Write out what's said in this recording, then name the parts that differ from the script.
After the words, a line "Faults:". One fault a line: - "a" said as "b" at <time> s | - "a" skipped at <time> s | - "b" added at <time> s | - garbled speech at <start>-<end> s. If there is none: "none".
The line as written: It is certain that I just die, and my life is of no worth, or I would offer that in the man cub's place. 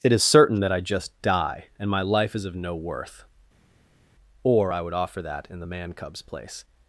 It is certain that I just die, and my life is of no worth, or I would offer that in the man cub's place.
Faults:
none